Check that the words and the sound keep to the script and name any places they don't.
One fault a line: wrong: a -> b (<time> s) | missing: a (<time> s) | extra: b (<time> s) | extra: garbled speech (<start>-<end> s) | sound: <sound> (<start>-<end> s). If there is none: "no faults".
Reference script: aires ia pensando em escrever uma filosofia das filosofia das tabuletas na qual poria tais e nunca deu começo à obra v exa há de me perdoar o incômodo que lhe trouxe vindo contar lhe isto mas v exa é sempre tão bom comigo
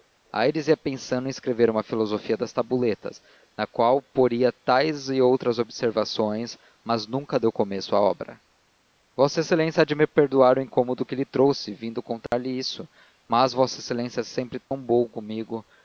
missing: filosofia das (2.5 s)
extra: outras observações mas (5.2 s)
sound: dropout (12.3-12.3 s)
sound: dropout (14.6-14.7 s)